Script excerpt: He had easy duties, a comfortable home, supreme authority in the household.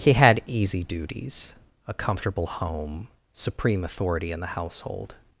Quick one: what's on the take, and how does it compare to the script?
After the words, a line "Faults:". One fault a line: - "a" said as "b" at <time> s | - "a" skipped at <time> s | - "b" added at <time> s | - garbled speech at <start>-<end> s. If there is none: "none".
He had easy duties, a comfortable home, supreme authority in the household.
Faults:
none